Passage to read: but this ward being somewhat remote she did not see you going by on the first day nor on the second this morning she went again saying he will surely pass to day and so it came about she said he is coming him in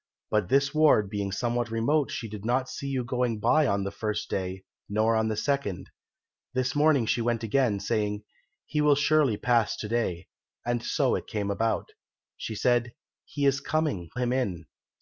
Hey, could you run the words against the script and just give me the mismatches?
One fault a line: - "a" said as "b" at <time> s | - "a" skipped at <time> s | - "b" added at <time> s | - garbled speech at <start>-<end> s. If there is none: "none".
none